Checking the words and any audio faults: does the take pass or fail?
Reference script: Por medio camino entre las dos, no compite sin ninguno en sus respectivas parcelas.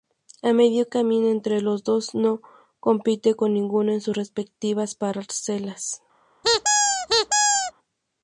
fail